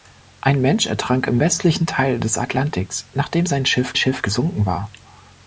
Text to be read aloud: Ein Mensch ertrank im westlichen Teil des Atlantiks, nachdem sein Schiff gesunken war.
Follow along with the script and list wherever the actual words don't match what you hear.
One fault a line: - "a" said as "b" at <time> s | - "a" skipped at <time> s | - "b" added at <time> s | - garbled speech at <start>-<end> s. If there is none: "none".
- "Schiff" added at 4.0 s